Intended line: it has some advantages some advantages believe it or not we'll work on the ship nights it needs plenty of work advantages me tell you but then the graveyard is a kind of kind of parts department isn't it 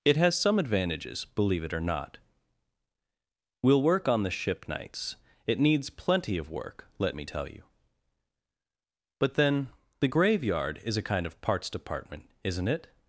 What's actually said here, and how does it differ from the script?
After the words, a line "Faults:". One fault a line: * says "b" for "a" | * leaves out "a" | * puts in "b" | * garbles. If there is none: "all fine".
it has some advantages believe it or not we'll work on the ship nights it needs plenty of work let me tell you but then the graveyard is a kind of parts department isn't it
Faults:
* leaves out "some advantages"
* says "let" for "advantages"
* leaves out "kind of"